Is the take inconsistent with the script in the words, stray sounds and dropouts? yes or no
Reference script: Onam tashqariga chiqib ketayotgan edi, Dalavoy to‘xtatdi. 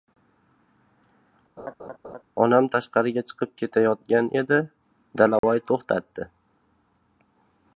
yes